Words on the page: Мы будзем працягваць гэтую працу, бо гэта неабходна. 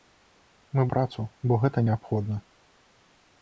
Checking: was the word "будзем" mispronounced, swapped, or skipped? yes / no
yes